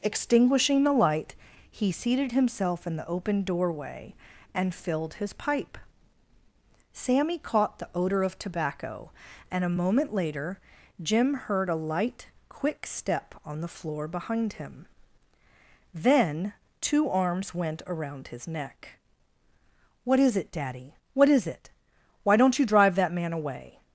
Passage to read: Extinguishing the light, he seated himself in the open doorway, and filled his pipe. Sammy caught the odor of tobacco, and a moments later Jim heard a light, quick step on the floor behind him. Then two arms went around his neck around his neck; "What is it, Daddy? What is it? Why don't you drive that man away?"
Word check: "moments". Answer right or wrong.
wrong